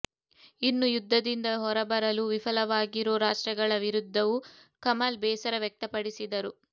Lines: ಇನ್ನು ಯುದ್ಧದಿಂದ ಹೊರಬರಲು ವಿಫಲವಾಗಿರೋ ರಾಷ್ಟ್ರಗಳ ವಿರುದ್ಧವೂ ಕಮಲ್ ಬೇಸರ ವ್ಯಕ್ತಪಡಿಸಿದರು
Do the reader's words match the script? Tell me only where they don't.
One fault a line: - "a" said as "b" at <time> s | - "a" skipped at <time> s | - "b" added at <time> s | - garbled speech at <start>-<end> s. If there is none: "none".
none